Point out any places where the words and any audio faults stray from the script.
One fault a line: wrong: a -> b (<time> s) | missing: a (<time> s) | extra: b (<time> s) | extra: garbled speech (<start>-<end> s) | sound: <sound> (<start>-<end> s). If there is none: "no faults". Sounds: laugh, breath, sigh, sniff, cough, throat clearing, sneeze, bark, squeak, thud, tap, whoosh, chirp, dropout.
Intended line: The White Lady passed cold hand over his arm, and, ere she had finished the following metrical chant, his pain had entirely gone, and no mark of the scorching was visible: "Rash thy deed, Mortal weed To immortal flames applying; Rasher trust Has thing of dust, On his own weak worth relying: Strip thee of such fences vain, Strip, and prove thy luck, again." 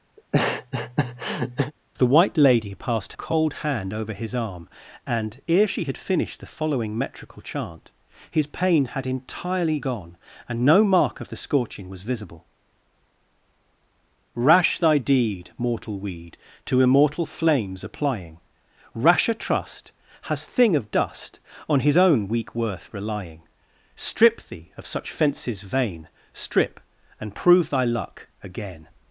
sound: laugh (0.2-1.7 s)